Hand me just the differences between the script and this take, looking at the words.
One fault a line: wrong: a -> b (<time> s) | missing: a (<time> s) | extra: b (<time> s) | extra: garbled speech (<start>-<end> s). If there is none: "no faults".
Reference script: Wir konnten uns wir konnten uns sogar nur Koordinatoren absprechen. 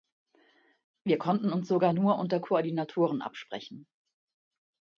missing: wir konnten uns (1.7 s)
extra: unter (2.2 s)